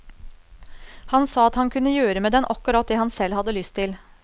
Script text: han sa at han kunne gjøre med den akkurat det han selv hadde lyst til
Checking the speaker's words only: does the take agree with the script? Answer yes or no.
yes